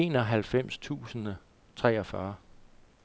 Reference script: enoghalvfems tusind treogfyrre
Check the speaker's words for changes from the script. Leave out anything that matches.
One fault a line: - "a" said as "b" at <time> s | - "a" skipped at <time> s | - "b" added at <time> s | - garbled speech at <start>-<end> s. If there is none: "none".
none